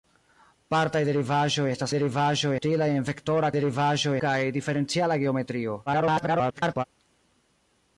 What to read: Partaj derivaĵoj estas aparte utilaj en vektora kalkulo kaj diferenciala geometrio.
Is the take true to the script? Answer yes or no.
no